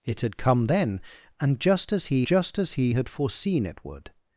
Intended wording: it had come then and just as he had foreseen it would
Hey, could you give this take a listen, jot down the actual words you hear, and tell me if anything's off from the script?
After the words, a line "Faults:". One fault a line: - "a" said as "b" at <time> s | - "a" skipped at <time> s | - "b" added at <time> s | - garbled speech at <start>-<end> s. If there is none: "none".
it had come then and just as he just as he had foreseen it would
Faults:
- "just as he" added at 2.2 s